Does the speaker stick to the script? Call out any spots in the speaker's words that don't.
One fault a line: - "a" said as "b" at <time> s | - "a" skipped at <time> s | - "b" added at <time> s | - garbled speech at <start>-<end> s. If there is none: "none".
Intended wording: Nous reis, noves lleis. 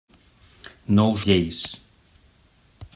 - "reis noves" skipped at 1.1 s